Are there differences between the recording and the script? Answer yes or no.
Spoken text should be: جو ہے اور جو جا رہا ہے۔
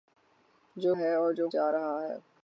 no